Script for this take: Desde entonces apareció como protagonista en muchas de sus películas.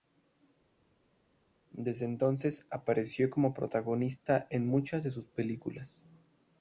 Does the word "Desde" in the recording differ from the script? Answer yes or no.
no